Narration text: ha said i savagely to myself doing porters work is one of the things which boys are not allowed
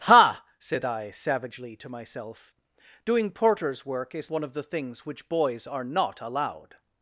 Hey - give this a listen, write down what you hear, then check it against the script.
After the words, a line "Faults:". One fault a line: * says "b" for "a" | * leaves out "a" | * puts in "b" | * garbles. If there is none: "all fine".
ha said i savagely to myself doing porters work is one of the things which boys are not allowed
Faults:
all fine